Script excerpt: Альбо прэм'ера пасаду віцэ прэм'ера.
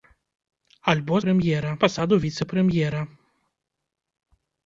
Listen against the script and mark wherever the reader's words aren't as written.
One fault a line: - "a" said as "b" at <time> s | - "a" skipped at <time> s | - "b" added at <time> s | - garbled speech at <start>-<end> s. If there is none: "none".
none